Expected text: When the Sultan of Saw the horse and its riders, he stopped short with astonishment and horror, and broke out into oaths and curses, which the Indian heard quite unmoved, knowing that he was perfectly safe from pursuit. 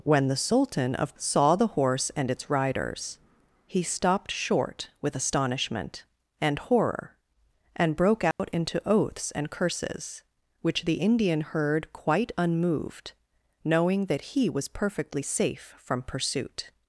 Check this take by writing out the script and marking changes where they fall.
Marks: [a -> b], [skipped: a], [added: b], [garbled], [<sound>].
When the Sultan of Saw the horse and its riders, he stopped short with astonishment and horror, and broke out [dropout] into oaths and curses, which the Indian heard quite unmoved, knowing that he was perfectly safe from pursuit.